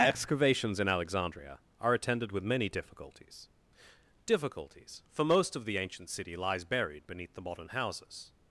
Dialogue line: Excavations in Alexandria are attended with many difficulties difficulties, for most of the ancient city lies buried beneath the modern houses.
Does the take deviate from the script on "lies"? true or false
false